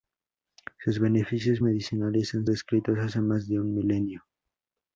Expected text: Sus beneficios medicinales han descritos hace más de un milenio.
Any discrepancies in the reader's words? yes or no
no